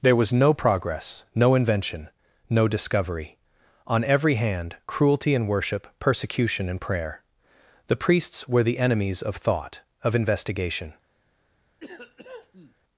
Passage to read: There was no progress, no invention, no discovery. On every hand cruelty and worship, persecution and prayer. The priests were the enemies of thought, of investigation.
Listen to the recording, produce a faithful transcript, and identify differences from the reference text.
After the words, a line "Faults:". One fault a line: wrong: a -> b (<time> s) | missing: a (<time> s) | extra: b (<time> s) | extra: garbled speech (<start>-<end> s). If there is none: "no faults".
There was no progress, no invention, no discovery. On every hand cruelty and worship, persecution and prayer. The priests were the enemies of thought, of investigation.
Faults:
no faults